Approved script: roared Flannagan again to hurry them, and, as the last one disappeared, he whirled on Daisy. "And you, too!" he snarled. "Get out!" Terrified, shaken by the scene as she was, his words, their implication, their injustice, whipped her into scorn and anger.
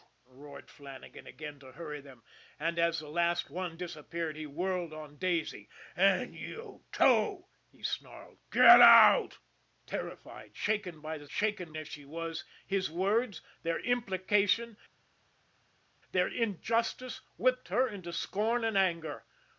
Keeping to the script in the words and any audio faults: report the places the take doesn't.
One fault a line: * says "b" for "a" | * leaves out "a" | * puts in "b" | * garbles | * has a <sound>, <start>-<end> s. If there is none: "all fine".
* says "shaken" for "scene"